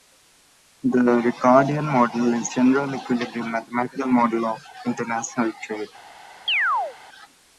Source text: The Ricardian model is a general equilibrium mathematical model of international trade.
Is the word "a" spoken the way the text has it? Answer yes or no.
no